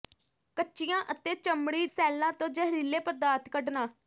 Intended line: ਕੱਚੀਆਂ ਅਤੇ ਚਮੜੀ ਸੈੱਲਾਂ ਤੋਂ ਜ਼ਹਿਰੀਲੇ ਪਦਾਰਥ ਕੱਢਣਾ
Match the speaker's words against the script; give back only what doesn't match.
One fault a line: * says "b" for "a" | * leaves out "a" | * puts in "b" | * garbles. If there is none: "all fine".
all fine